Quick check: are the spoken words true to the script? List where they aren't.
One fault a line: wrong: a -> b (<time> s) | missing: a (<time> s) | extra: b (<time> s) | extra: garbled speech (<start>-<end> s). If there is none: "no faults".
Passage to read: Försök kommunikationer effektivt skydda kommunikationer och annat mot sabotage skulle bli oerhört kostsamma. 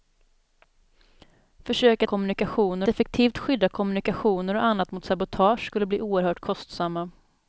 no faults